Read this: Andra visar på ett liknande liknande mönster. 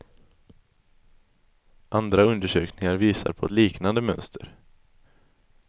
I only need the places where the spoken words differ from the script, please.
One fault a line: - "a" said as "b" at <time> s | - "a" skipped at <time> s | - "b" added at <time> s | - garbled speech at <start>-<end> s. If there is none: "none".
- "undersökningar" added at 2.2 s
- "liknande" skipped at 4.0 s